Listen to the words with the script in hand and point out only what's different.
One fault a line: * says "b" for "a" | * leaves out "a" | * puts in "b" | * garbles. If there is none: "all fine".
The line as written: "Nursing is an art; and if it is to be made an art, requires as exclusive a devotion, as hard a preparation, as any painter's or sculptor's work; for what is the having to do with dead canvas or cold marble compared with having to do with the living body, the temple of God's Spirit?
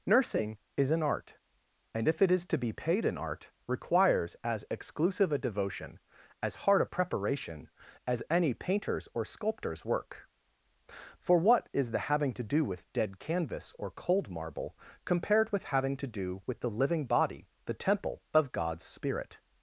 * says "paid" for "made"